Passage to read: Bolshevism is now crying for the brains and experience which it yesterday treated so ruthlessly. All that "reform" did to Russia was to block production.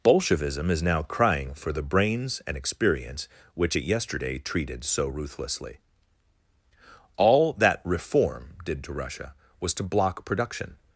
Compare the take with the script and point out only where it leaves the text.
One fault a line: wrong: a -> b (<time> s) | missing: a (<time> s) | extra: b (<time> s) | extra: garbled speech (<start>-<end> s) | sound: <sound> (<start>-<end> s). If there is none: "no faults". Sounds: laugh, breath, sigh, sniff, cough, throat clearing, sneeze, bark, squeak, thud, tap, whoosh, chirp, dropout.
no faults